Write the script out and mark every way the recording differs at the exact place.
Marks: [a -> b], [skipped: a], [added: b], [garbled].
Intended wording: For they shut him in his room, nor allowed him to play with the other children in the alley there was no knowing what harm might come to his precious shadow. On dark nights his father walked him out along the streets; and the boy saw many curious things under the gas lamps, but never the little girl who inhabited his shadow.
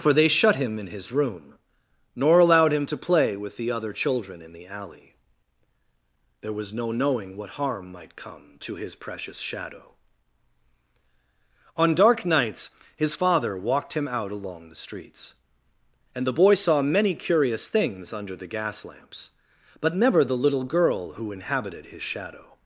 For they shut him in his room, nor allowed him to play with the other children in the alley there was no knowing what harm might come to his precious shadow. On dark nights his father walked him out along the streets; and the boy saw many curious things under the gas lamps, but never the little girl who inhabited his shadow.